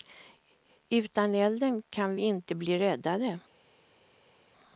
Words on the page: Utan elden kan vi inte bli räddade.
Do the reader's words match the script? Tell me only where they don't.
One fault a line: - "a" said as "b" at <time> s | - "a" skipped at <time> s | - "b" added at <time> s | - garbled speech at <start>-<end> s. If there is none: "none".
none